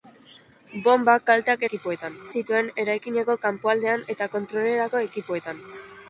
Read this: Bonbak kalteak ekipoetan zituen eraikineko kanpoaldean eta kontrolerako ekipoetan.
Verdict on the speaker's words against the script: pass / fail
pass